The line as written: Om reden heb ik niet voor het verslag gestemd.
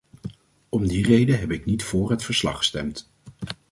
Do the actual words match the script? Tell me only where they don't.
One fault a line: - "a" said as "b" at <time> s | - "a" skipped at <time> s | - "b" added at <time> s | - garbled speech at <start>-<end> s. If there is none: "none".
- "die" added at 0.9 s